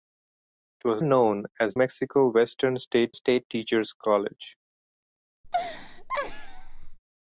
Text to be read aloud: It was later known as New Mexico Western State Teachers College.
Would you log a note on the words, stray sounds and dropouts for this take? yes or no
yes